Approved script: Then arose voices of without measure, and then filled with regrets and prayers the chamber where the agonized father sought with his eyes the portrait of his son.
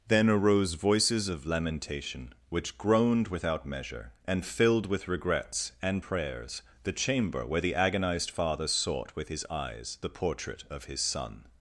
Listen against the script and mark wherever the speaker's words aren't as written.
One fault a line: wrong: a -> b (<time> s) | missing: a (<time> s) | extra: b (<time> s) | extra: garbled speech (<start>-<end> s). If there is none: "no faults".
extra: lamentation which groaned (1.4 s)
missing: then (4.5 s)